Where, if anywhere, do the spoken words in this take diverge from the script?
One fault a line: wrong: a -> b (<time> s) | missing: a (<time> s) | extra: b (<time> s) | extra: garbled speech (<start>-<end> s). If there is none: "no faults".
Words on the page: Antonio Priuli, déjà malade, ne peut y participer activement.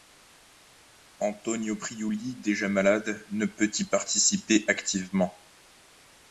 no faults